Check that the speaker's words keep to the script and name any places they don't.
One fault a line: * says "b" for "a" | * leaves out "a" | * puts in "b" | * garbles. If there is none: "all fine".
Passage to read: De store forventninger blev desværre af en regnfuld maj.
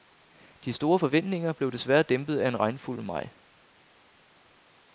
* puts in "dæmpet"